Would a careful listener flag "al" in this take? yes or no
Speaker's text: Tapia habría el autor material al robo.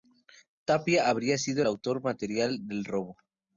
yes